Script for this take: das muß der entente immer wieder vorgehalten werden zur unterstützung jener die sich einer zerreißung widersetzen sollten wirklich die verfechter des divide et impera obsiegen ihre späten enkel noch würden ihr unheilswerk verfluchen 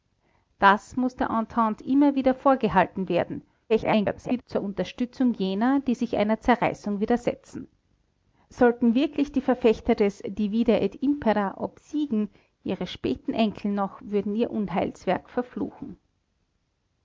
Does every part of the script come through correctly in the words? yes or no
no